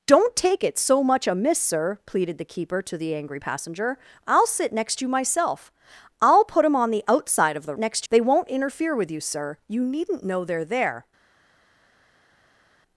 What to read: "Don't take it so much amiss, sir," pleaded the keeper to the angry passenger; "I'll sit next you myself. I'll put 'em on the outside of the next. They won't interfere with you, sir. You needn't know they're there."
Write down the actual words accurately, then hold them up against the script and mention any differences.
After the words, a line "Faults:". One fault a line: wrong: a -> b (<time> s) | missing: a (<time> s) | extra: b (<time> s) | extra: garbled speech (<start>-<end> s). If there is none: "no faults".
"Don't take it so much amiss, sir," pleaded the keeper to the angry passenger; "I'll sit next you myself. I'll put 'em on the outside of the next. They won't interfere with you, sir. You needn't know they're there."
Faults:
no faults